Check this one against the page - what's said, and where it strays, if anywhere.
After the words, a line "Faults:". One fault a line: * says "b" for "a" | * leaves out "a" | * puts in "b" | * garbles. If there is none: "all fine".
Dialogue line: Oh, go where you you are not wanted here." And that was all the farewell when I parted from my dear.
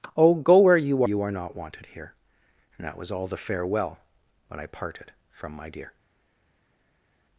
Oh, go where you you are not wanted here." And that was all the farewell when I parted from my dear.
Faults:
all fine